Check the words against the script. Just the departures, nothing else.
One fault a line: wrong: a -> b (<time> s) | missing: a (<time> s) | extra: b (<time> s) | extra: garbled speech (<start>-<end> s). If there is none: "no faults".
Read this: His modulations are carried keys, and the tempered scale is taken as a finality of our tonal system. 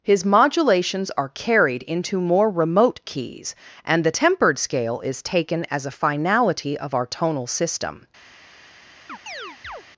extra: into more remote (1.8 s)